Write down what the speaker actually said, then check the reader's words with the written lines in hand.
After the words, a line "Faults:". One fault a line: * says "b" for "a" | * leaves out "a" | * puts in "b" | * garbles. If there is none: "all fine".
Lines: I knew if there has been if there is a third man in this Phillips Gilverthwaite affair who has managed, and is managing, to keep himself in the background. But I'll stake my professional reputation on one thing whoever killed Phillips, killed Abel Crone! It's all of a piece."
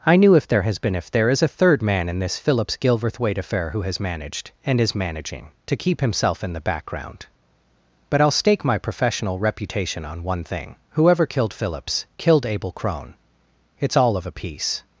I knew if there has been if there is a third man in this Phillips Gilverthwaite affair who has managed, and is managing, to keep himself in the background. But I'll stake my professional reputation on one thing whoever killed Phillips, killed Abel Crone! It's all of a piece."
Faults:
all fine